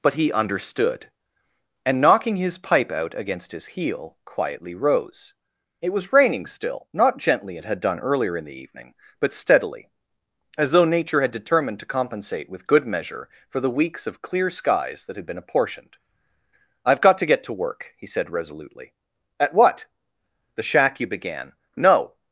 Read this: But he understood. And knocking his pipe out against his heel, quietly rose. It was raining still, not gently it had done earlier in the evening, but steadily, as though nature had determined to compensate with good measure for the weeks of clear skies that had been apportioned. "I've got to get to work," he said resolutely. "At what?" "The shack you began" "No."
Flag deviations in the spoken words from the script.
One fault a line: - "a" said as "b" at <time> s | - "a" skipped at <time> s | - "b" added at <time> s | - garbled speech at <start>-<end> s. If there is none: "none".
none